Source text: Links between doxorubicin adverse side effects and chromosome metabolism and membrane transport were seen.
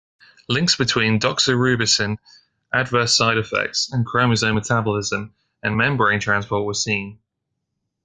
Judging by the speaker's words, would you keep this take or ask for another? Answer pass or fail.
pass